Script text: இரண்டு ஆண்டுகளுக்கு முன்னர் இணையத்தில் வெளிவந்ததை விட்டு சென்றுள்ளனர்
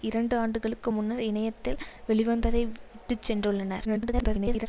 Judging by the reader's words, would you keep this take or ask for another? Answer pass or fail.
fail